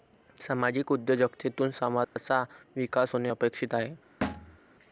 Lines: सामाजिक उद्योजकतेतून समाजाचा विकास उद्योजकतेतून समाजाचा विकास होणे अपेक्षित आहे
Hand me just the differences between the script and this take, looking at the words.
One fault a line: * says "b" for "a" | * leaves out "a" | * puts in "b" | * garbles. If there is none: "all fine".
* leaves out "उद्योजकतेतून समाजाचा विकास"